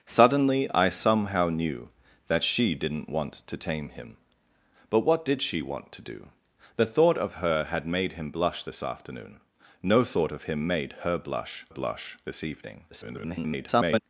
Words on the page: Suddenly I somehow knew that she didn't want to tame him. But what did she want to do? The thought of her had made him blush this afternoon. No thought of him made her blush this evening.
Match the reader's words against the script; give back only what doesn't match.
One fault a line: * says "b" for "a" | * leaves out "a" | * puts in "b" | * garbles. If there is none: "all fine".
* puts in "blush"
* garbles